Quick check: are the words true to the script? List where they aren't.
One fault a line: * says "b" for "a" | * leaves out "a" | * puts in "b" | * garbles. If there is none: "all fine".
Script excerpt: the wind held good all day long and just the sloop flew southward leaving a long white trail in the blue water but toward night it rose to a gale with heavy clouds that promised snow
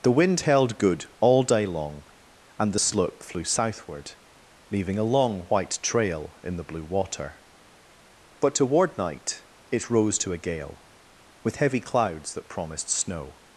* leaves out "just"